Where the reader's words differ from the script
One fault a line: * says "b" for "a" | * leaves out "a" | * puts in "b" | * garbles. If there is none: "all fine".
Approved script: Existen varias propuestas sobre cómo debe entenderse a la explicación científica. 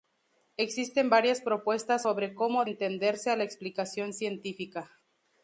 * leaves out "debe"